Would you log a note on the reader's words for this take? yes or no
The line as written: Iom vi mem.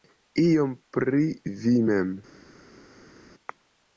yes